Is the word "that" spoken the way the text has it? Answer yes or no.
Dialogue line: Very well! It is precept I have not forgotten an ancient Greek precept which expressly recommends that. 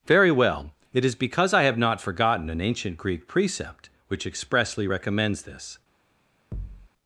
no